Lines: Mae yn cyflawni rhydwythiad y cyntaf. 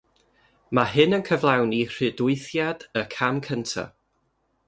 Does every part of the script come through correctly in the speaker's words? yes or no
no